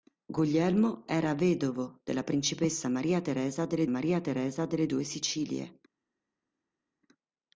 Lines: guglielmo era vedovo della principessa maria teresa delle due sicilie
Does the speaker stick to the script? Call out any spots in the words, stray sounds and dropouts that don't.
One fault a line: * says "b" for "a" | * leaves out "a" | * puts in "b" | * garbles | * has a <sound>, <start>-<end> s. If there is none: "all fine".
* puts in "maria teresa delle"